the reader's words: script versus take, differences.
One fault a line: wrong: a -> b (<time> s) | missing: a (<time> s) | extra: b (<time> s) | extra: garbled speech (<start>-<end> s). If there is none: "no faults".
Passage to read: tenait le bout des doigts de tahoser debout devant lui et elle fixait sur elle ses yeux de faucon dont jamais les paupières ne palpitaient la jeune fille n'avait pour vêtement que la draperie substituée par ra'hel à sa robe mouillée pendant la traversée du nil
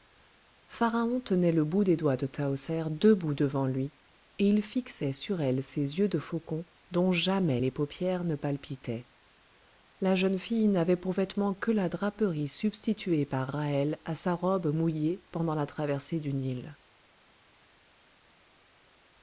wrong: elle -> il (4.5 s)